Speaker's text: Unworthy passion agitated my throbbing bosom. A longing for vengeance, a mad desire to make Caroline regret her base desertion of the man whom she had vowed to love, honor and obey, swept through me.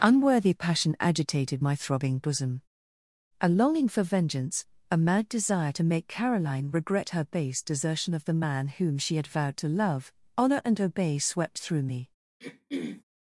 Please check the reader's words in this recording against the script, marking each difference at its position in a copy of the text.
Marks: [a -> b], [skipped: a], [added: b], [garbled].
Unworthy passion agitated my throbbing bosom. A longing for vengeance, a mad desire to make Caroline regret her base desertion of the man whom she had vowed to love, honor and obey, swept through me.